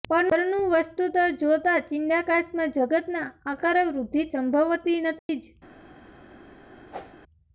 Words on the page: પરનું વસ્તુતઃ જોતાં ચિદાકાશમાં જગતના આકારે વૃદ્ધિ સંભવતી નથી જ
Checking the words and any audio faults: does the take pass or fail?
fail